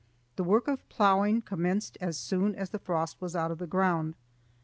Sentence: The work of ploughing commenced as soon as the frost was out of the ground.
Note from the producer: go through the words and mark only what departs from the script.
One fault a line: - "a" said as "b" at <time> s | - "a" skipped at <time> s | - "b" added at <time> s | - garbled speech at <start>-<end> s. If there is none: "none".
none